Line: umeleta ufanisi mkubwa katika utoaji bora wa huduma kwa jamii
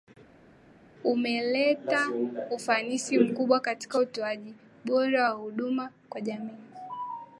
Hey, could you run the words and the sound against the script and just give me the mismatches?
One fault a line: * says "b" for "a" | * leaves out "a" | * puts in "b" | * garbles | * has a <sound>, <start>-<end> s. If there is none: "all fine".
all fine